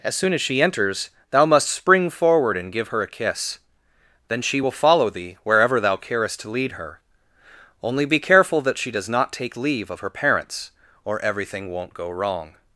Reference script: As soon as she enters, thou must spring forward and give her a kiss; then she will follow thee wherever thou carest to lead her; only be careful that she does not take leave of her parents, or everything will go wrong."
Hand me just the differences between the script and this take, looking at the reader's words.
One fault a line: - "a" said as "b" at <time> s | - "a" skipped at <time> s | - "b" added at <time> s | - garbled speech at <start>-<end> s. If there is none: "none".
- "will" said as "won't" at 11.7 s